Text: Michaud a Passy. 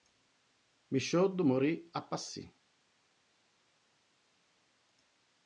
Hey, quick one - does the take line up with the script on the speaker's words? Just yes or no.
no